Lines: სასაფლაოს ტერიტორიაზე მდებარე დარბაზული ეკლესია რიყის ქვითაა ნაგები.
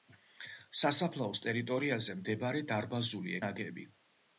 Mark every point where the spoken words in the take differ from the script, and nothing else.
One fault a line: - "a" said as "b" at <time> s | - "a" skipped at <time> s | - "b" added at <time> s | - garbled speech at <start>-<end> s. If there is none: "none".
- "ეკლესია რიყის ქვითაა" skipped at 3.4 s